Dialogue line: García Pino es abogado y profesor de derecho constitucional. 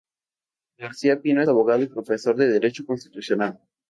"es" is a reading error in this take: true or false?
true